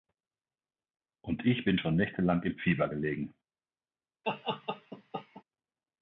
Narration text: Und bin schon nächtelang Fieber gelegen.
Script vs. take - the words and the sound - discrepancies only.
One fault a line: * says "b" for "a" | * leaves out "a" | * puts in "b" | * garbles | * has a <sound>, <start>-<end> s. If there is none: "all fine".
* puts in "ich"
* puts in "im"
* has a laugh, 4.2-5.4 s